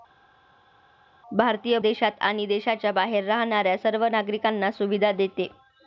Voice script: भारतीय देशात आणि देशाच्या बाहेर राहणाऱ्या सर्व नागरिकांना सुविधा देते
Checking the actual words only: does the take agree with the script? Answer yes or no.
yes